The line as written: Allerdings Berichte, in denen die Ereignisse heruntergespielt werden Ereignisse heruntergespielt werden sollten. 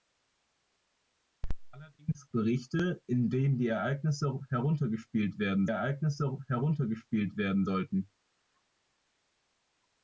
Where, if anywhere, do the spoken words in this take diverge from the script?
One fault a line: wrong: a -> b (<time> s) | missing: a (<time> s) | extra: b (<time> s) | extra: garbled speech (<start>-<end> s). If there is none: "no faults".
no faults